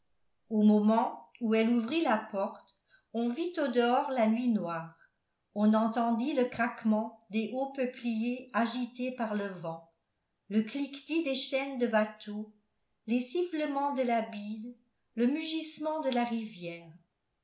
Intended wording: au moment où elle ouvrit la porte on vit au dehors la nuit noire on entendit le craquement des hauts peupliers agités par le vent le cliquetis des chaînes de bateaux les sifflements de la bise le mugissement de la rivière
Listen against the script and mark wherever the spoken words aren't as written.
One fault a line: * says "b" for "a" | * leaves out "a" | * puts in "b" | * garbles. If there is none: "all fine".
all fine